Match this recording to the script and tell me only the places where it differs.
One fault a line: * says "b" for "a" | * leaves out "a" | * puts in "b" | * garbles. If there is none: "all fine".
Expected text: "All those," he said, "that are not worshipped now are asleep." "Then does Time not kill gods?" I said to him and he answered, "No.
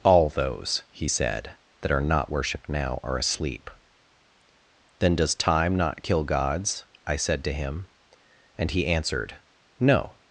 all fine